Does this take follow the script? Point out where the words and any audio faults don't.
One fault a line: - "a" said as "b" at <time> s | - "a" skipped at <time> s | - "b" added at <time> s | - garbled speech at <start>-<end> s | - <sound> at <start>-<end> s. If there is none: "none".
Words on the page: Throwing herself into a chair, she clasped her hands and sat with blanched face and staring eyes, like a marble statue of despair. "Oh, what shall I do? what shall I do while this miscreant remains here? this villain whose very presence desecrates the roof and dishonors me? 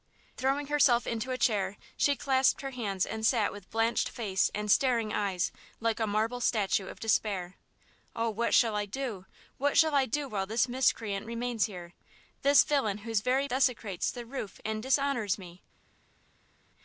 - "presence" skipped at 13.5 s